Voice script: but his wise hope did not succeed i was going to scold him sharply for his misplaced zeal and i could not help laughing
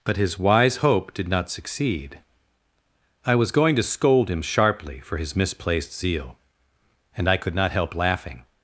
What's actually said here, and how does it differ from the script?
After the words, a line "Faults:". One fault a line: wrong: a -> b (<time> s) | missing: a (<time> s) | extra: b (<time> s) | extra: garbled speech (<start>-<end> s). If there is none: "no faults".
but his wise hope did not succeed i was going to scold him sharply for his misplaced zeal and i could not help laughing
Faults:
no faults